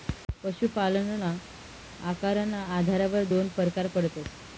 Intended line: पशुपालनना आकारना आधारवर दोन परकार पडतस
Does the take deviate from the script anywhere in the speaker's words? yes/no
no